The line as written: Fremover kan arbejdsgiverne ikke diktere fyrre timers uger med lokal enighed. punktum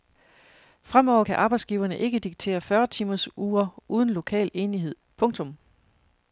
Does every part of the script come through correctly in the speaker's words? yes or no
no